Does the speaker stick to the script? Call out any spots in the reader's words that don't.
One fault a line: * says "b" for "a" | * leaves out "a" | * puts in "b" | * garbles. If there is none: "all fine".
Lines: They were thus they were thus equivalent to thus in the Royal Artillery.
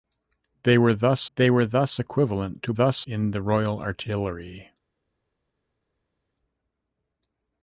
all fine